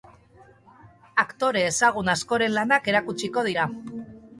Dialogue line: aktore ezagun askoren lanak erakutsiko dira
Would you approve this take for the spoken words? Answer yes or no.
yes